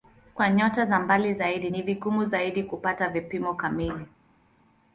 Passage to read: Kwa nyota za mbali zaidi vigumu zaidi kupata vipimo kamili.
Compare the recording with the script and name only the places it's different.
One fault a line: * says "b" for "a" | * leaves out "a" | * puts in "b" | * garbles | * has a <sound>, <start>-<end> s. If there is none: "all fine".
* puts in "ni"